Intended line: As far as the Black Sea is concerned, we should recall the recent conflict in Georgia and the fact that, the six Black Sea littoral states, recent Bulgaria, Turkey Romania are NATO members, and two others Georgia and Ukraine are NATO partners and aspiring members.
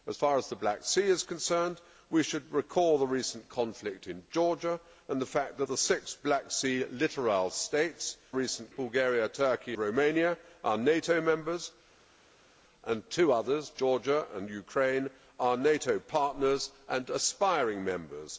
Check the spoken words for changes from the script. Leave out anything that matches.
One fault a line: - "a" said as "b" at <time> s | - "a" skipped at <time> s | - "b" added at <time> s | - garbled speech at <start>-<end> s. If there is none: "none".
none